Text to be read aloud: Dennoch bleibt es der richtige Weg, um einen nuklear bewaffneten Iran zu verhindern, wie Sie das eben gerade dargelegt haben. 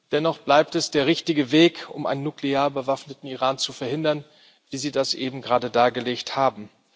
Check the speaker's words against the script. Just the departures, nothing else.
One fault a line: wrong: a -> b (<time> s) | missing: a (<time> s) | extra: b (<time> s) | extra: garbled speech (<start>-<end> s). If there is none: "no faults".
no faults